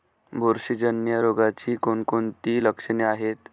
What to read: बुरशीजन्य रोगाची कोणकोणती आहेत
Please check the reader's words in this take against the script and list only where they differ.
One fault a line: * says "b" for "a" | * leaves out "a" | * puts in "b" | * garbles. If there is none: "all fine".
* puts in "लक्षणे"